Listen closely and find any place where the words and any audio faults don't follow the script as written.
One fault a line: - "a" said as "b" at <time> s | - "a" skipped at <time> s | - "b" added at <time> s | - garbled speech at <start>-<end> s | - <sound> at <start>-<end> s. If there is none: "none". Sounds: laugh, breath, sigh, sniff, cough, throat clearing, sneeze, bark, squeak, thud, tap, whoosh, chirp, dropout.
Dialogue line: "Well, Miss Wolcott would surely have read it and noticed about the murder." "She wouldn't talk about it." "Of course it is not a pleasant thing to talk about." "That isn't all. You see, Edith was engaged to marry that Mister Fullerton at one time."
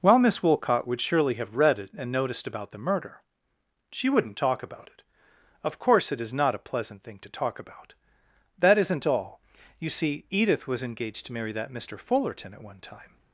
none